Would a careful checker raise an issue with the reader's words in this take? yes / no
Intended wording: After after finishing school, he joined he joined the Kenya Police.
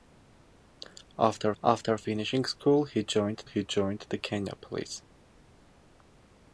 no